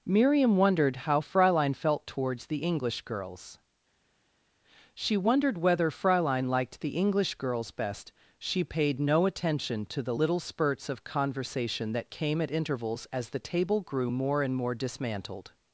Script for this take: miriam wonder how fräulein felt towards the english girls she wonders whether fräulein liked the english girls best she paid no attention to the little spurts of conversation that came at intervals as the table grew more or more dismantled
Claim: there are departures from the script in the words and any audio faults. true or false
true